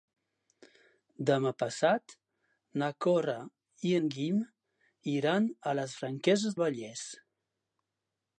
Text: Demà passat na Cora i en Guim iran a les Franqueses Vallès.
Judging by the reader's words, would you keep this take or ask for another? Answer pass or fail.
pass